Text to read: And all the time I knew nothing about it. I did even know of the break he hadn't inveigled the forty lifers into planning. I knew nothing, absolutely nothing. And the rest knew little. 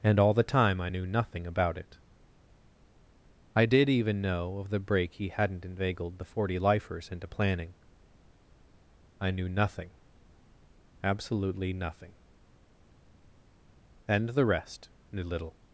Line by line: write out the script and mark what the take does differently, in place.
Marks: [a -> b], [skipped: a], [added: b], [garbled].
And all the time I knew nothing about it. I did even know of the break he hadn't inveigled the forty lifers into planning. I knew nothing, absolutely nothing. And the rest knew little.